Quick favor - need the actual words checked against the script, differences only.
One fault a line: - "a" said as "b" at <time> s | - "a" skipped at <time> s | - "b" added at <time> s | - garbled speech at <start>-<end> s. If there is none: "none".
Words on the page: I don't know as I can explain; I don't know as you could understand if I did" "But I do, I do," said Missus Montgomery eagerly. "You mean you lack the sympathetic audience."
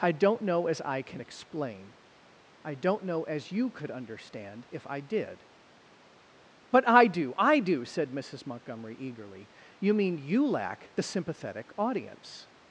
none